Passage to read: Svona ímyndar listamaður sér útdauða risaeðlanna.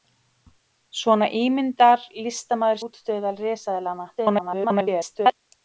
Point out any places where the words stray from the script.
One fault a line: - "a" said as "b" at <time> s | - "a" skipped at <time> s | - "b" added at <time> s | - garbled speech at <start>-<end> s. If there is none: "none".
- "sér" skipped at 2.8 s
- garbled speech at 4.2-5.4 s